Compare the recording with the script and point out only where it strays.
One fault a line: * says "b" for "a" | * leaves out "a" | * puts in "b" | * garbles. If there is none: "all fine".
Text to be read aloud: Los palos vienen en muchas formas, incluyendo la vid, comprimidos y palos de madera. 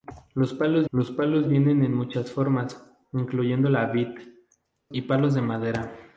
* puts in "los palos"
* leaves out "comprimidos"